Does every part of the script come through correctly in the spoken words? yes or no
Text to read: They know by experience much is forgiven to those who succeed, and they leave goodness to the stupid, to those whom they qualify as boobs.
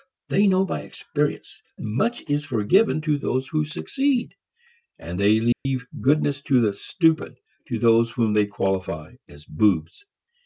yes